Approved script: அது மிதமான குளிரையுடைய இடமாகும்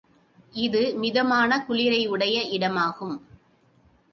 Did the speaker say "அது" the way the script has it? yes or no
no